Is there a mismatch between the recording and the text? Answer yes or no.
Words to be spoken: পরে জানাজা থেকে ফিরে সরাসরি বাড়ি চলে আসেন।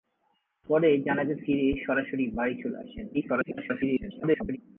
yes